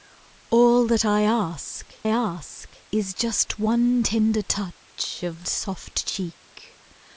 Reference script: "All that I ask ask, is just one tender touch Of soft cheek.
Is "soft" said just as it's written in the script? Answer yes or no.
yes